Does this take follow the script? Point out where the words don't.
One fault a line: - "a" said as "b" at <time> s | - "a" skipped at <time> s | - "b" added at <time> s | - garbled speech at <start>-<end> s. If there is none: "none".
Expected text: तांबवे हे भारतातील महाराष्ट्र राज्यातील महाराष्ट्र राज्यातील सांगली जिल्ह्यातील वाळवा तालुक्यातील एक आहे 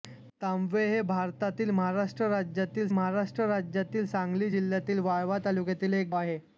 none